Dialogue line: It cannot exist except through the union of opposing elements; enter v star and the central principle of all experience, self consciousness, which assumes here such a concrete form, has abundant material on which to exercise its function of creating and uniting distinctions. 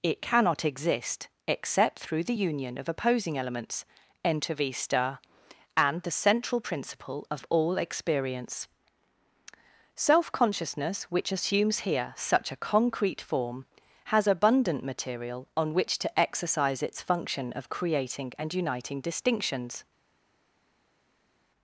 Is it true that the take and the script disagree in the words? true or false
false